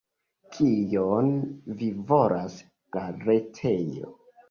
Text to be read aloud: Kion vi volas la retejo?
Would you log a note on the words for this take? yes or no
no